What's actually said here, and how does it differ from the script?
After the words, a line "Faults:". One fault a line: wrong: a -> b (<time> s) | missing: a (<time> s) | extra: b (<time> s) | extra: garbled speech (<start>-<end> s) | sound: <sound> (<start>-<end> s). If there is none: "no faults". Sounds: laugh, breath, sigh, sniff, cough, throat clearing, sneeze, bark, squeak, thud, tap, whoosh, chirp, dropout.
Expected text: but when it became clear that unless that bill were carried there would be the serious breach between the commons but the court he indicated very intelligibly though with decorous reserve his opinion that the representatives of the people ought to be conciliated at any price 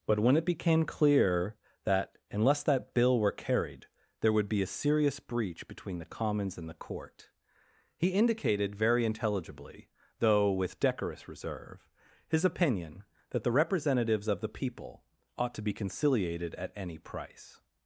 but when it became clear that unless that bill were carried there would be a serious breach between the commons and the court he indicated very intelligibly though with decorous reserve his opinion that the representatives of the people ought to be conciliated at any price
Faults:
wrong: the -> a (4.6 s)
wrong: but -> and (6.6 s)